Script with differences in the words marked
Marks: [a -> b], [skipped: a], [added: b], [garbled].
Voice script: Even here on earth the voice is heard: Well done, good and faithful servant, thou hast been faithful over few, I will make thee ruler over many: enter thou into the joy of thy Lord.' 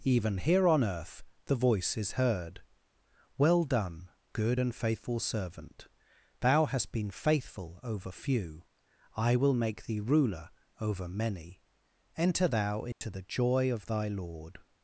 Even here on earth the voice is heard: Well done, good and faithful servant, thou hast been faithful over few, I will make thee ruler over many: enter thou into the joy of thy Lord.'